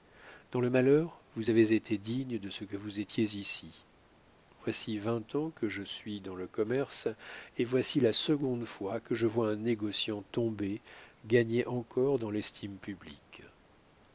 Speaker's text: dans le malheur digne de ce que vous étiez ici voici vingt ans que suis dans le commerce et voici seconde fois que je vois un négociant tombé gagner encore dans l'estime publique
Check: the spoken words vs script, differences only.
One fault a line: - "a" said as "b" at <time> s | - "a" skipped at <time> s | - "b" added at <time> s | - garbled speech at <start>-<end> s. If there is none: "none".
- "vous avez été" added at 1.4 s
- "je" added at 5.7 s
- "la" added at 8.0 s